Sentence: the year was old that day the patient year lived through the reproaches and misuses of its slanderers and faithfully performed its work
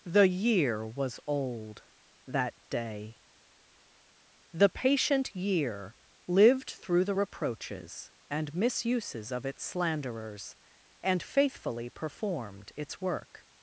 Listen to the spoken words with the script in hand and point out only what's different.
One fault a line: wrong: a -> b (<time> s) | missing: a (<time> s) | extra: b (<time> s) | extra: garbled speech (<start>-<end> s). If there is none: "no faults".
no faults